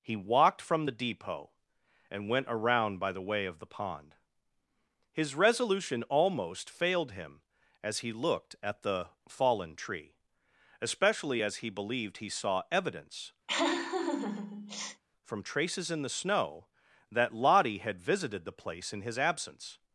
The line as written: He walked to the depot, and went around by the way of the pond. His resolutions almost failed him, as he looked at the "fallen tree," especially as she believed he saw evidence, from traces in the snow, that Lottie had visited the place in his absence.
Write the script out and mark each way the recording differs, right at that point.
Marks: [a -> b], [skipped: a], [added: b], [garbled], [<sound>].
He walked [to -> from] the depot, and went around by the way of the pond. His [resolutions -> resolution] almost failed him, as he looked at the "fallen tree," especially as [she -> he] believed he saw evidence, [laugh] from traces in the snow, that Lottie had visited the place in his absence.